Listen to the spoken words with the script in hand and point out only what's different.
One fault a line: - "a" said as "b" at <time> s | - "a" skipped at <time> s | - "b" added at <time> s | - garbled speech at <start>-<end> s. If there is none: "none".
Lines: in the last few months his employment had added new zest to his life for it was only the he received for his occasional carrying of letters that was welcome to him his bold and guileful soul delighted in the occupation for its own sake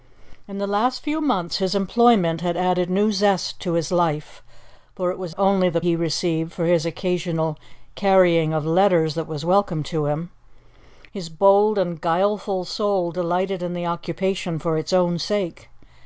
none